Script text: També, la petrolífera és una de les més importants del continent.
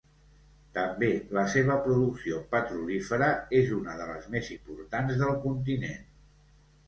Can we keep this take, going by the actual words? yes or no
no